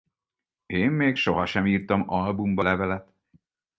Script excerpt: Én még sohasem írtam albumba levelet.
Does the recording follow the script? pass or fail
pass